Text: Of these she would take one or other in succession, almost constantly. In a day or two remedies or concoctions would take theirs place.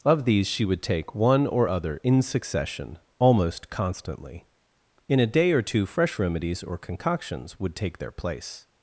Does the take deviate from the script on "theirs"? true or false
true